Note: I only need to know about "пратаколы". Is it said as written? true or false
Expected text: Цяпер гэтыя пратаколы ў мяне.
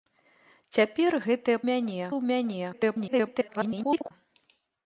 false